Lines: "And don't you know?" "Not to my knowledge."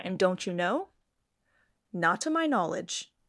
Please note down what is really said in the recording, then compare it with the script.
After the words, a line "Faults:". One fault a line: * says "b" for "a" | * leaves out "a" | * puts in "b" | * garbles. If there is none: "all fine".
"And don't you know?" "Not to my knowledge."
Faults:
all fine